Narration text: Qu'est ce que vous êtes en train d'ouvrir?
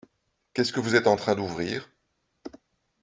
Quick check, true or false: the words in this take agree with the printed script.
true